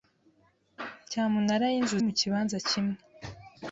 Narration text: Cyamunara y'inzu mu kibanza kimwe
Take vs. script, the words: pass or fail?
pass